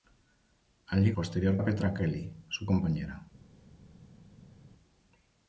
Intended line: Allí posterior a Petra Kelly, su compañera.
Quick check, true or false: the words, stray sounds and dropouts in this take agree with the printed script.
true